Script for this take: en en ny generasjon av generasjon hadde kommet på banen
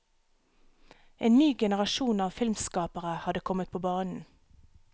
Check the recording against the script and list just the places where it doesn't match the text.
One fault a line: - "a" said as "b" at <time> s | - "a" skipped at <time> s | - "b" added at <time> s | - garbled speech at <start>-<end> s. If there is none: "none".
- "en" skipped at 1.4 s
- "generasjon" said as "filmskapere" at 2.3 s